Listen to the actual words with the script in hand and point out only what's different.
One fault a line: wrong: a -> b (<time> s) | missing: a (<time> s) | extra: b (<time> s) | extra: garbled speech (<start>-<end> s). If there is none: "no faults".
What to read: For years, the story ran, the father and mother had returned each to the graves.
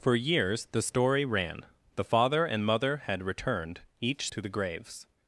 no faults